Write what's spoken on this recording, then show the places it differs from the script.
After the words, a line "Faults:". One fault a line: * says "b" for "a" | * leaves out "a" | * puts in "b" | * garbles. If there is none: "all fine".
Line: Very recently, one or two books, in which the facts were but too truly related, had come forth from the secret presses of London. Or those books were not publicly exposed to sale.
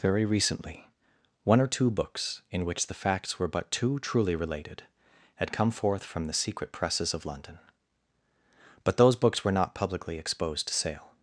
Very recently, one or two books, in which the facts were but too truly related, had come forth from the secret presses of London. But those books were not publicly exposed to sale.
Faults:
* says "But" for "Or"